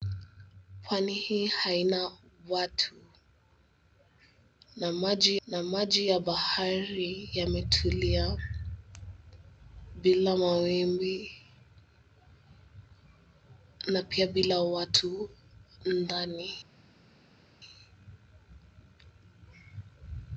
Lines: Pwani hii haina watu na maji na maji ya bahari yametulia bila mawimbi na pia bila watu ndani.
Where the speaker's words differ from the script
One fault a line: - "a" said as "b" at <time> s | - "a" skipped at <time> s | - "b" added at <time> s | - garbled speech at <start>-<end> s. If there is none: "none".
none